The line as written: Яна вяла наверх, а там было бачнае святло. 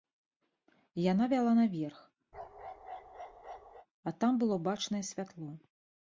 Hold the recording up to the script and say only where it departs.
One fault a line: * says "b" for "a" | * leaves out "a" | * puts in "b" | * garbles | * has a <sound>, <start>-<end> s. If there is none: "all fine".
* has a bark, 2.3-3.9 s